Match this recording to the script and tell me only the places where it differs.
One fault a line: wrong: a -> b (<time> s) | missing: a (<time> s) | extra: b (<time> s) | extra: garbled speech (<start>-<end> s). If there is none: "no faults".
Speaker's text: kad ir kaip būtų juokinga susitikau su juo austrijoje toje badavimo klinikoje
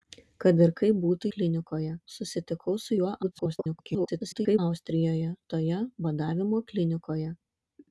wrong: juokinga -> klinikoje (1.4 s)
extra: garbled speech (3.2-4.6 s)